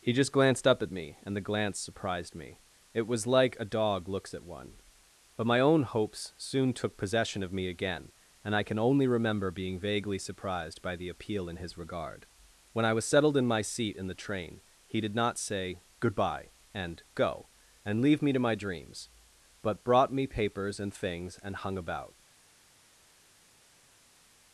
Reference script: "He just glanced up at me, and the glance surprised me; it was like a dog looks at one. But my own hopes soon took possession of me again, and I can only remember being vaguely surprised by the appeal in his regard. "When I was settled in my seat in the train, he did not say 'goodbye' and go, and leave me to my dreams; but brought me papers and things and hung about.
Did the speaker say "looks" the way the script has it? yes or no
yes